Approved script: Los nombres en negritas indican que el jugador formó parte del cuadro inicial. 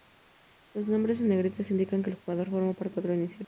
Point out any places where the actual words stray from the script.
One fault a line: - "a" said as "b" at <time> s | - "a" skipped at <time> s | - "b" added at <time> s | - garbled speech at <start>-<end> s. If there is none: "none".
- "del" skipped at 3.0 s